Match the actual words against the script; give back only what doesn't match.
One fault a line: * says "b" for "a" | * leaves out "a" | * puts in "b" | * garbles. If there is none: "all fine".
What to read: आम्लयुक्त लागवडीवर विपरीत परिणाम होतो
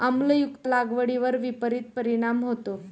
all fine